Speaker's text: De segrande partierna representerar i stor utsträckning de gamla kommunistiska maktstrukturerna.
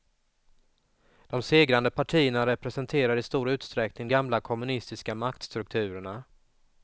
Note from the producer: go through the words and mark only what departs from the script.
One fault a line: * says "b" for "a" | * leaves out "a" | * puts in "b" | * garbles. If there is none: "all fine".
* leaves out "de"